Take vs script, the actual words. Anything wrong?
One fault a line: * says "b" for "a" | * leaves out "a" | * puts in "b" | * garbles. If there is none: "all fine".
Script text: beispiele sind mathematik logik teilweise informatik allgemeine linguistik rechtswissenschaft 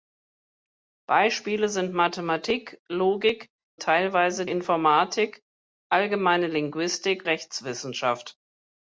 all fine